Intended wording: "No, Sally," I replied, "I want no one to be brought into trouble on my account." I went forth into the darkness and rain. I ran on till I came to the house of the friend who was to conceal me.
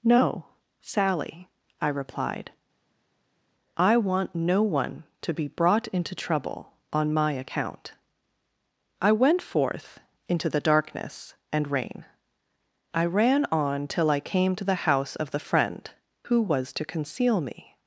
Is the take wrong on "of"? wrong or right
right